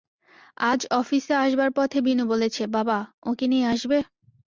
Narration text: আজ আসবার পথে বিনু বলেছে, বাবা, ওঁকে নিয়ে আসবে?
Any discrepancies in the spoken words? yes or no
yes